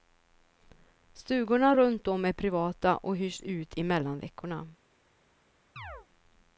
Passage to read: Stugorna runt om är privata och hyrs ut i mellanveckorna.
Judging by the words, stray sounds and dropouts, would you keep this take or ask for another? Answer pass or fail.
fail